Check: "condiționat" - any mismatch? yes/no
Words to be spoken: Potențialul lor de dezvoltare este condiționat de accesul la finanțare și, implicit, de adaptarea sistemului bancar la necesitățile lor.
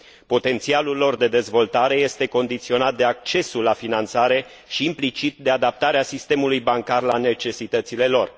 no